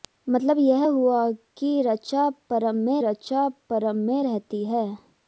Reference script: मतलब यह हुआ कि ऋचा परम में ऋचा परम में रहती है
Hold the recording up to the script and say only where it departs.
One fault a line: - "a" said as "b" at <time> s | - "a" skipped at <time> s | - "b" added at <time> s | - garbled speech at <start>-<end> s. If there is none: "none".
none